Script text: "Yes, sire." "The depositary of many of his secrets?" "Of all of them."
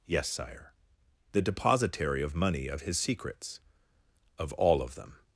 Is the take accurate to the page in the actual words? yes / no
no